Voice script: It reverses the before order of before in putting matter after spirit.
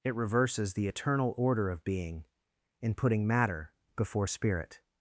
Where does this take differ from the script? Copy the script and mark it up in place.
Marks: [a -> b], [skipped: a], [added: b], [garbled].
It reverses the [before -> eternal] order of [before -> being] in putting matter [after -> before] spirit.